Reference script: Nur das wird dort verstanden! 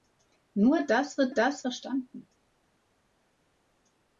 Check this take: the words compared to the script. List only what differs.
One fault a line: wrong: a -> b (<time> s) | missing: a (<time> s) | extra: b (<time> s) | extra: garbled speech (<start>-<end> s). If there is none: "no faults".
wrong: dort -> das (1.3 s)